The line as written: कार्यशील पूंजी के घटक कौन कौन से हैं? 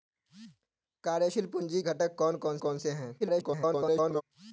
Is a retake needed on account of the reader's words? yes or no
yes